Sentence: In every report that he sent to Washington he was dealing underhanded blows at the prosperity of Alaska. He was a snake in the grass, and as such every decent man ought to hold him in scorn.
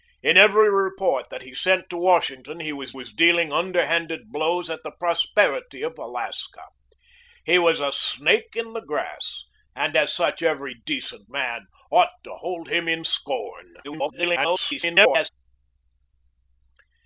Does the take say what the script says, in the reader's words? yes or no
no